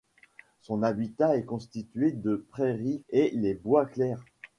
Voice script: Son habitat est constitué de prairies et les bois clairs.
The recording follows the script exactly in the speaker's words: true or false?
true